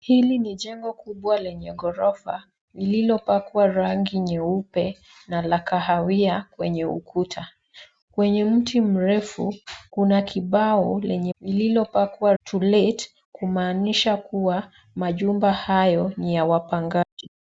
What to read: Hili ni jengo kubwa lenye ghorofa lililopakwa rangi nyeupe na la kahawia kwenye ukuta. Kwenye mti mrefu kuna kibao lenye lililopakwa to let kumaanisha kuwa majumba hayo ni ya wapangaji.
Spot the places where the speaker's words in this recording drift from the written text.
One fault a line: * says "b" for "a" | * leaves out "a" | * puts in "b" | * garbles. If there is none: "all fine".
all fine